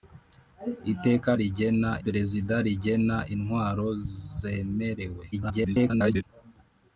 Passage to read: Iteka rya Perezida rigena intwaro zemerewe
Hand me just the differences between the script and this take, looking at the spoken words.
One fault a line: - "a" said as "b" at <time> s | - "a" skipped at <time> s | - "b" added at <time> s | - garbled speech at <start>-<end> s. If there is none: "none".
- "rya" said as "rigena" at 1.4 s
- garbled speech at 5.3-6.2 s